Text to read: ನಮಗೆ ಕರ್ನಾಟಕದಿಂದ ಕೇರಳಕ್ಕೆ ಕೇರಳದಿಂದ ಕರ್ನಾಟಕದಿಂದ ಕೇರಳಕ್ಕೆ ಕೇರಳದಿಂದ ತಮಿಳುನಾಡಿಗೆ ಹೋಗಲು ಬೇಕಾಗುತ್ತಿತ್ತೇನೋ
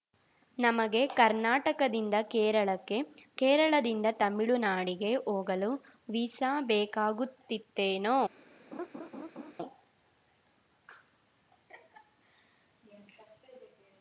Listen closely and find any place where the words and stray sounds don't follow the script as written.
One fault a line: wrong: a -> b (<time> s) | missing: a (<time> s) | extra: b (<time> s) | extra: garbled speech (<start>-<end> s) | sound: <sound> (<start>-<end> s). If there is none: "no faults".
missing: ಕರ್ನಾಟಕದಿಂದ ಕೇರಳಕ್ಕೆ ಕೇರಳದಿಂದ (4.1 s)
extra: ವೀಸಾ (6.1 s)
sound: laugh (8.7-9.5 s)